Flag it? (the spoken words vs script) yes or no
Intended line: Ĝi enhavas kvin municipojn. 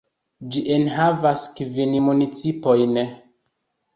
no